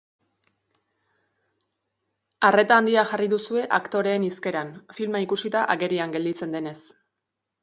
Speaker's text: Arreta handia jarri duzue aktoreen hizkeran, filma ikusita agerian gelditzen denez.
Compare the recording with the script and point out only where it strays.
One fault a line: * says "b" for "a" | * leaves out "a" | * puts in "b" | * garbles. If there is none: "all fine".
all fine